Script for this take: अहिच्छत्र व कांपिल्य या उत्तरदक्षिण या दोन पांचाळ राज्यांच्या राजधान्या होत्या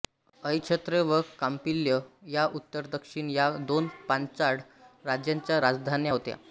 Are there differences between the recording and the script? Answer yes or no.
no